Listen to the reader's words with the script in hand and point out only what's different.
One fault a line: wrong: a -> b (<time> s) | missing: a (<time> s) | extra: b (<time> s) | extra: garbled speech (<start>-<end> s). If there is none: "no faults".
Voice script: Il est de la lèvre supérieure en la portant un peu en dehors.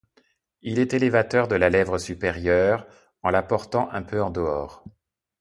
extra: élévateur (0.9 s)